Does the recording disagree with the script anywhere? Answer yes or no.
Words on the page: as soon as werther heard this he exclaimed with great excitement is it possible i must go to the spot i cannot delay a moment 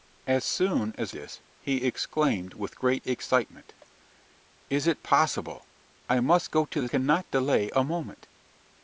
yes